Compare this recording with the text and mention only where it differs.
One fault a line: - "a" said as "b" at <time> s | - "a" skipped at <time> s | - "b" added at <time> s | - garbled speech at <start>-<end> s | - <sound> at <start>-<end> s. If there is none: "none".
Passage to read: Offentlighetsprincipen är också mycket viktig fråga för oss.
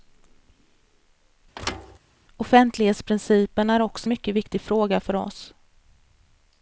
- thud at 1.5-2.0 s